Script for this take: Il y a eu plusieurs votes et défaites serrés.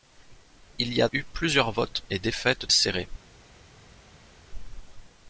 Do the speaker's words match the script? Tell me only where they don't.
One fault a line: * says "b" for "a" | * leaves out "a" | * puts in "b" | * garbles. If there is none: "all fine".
all fine